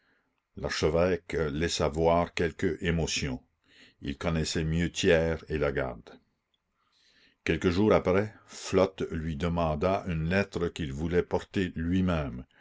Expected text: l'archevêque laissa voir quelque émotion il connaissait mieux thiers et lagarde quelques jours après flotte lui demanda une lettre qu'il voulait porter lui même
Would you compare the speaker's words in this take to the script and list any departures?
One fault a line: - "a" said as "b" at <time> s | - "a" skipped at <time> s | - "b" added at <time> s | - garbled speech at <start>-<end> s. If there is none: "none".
none